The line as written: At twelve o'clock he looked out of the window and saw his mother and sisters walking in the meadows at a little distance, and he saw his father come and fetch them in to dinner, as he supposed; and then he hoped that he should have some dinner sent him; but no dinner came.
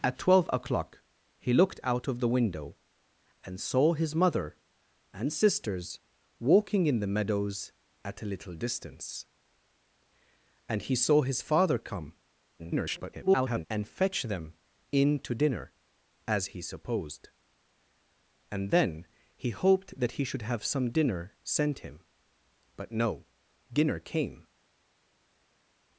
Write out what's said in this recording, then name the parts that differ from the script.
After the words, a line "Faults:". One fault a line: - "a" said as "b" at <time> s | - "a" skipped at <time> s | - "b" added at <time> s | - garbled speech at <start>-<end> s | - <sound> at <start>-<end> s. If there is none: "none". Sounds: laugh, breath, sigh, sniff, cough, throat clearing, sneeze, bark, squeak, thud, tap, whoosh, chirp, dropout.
At twelve o'clock he looked out of the window and saw his mother and sisters walking in the meadows at a little distance, and he saw his father come [garbled] and fetch them in to dinner, as he supposed; and then he hoped that he should have some dinner sent him; but no dinner came.
Faults:
- garbled speech at 12.6-13.7 s